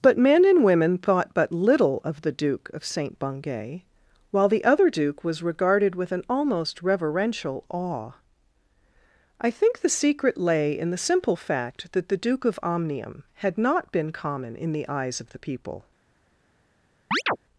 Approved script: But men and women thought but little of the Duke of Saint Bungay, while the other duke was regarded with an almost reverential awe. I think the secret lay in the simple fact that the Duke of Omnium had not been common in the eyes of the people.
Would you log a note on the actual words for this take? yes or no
no